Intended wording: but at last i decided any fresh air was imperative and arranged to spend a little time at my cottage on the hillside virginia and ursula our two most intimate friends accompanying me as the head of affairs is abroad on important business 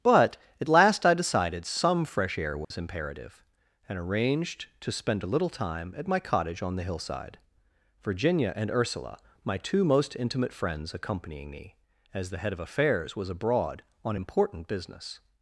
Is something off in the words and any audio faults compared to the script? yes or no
yes